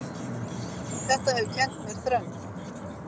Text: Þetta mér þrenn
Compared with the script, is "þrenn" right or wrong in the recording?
right